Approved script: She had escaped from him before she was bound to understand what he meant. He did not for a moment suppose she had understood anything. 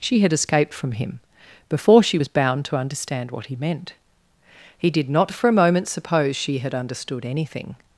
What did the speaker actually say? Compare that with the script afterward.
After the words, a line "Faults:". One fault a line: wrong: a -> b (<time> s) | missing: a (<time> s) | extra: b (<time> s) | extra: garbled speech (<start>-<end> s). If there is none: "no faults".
She had escaped from him before she was bound to understand what he meant. He did not for a moment suppose she had understood anything.
Faults:
no faults